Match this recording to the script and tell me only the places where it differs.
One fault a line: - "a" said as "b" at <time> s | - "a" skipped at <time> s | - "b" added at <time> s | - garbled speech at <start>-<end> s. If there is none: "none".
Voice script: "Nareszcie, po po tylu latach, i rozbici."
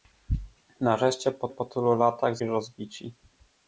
none